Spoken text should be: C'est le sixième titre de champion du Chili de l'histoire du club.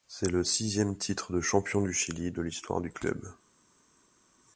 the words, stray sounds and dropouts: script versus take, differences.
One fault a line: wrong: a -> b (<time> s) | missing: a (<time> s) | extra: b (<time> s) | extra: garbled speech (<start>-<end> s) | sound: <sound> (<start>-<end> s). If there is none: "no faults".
no faults